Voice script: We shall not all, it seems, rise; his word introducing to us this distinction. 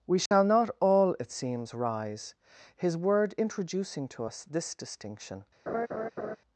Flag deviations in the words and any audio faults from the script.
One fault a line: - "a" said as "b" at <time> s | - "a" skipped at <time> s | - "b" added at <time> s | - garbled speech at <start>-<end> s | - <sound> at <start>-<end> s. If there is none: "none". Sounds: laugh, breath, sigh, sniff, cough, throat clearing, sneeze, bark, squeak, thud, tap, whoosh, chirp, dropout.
- dropout at 0.3-0.3 s
- laugh at 5.7-6.4 s